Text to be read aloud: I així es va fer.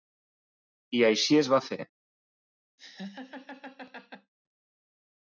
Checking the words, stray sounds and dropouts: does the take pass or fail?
fail